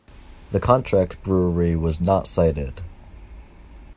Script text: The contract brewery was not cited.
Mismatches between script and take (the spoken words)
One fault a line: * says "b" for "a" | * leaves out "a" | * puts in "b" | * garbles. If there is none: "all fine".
all fine